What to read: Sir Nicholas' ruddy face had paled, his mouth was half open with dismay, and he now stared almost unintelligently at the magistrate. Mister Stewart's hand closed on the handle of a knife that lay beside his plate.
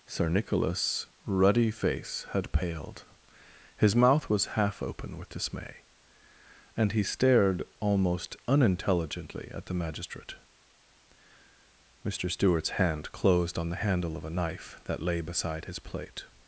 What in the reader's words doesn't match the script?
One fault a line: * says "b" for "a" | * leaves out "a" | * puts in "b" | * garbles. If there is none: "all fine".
* leaves out "now"